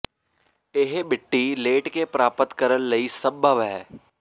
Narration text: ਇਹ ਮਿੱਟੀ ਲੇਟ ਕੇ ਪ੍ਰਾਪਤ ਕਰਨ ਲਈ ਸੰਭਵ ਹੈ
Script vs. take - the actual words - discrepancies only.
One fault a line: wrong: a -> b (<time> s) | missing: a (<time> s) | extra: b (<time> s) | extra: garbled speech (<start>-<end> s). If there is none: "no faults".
no faults